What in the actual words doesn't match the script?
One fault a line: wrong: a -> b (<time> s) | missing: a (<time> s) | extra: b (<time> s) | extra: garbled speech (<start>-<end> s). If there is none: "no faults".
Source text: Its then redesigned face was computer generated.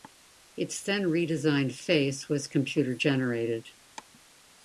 no faults